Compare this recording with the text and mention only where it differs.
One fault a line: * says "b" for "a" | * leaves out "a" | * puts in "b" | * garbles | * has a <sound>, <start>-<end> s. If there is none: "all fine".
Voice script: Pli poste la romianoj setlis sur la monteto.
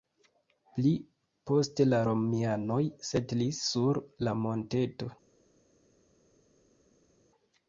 all fine